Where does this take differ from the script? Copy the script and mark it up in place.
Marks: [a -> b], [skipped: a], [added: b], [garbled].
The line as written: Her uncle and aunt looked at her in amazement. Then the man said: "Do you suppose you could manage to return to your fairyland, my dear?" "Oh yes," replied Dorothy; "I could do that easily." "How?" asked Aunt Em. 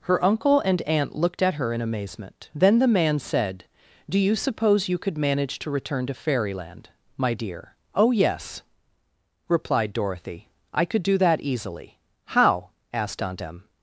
Her uncle and aunt looked at her in amazement. Then the man said: "Do you suppose you could manage to return to [skipped: your] fairyland, my dear?" "Oh yes," replied Dorothy; "I could do that easily." "How?" asked Aunt Em.